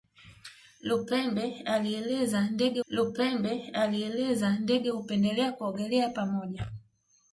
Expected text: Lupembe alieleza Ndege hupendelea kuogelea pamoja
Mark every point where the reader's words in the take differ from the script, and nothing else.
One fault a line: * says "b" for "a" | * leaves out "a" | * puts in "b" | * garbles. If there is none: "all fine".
* puts in "lupembe alieleza Ndege"